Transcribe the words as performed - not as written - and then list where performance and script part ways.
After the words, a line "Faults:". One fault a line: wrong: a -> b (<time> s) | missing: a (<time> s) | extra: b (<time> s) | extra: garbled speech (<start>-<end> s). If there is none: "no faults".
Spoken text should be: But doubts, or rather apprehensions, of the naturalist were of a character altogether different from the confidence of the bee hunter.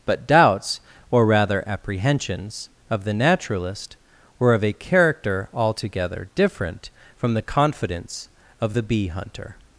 But doubts, or rather apprehensions, of the naturalist were of a character altogether different from the confidence of the bee hunter.
Faults:
no faults